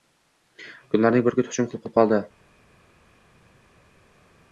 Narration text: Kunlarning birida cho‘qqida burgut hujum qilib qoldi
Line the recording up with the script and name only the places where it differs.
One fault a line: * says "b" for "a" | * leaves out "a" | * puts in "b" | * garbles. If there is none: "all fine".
* leaves out "birida cho‘qqida"
* puts in "qilib"